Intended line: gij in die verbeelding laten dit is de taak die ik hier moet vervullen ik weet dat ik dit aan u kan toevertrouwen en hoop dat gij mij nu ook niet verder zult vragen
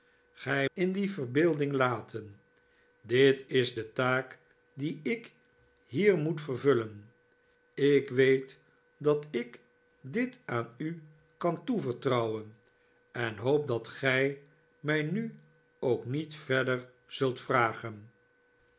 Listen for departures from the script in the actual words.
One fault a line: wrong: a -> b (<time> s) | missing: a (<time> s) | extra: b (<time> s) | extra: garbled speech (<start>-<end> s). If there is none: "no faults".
no faults